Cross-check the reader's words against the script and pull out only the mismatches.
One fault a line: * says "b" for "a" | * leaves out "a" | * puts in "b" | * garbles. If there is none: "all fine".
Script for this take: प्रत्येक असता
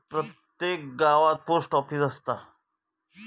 * puts in "गावात पोस्ट ऑफीस"